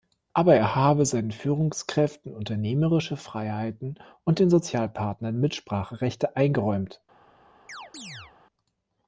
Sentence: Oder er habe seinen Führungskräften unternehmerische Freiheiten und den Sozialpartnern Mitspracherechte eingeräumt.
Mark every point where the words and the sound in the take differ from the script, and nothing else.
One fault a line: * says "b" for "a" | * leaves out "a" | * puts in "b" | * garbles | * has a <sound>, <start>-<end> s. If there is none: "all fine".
* says "Aber" for "Oder"
* has a chirp, 7.7-8.3 s